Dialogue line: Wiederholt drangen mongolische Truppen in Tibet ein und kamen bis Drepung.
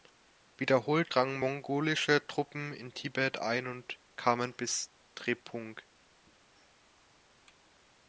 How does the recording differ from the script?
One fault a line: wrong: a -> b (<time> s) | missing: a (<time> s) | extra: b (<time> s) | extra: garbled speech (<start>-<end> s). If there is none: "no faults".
no faults